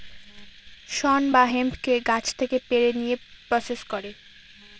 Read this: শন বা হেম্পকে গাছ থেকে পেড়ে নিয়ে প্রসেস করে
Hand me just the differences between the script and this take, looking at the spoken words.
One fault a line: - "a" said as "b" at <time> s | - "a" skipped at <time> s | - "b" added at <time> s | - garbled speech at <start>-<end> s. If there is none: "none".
none